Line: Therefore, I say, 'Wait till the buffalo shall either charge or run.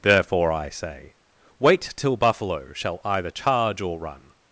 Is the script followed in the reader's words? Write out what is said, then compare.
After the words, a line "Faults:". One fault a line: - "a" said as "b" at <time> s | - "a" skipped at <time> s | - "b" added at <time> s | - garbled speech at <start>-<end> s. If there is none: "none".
Therefore, I say, 'Wait till buffalo shall either charge or run.
Faults:
- "the" skipped at 2.2 s